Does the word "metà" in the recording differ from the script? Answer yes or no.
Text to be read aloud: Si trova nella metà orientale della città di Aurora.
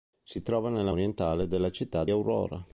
yes